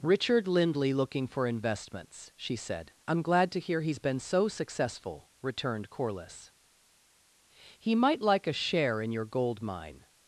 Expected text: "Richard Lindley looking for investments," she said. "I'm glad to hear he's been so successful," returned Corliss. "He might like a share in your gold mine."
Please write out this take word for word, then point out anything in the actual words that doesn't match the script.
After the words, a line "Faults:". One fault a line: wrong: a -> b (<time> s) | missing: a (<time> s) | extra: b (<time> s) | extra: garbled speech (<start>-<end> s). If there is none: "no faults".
"Richard Lindley looking for investments," she said. "I'm glad to hear he's been so successful," returned Corliss. "He might like a share in your gold mine."
Faults:
no faults